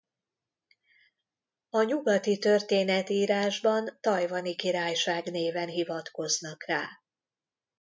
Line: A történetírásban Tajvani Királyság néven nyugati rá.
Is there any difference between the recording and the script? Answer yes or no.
yes